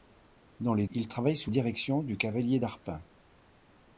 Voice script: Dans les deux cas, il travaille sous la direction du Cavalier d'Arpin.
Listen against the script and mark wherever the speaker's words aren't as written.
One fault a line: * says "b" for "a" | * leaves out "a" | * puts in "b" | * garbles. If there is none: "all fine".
* leaves out "deux cas"
* leaves out "la"